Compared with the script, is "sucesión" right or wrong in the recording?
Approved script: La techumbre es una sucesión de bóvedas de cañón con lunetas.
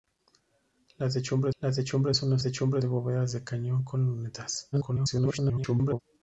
wrong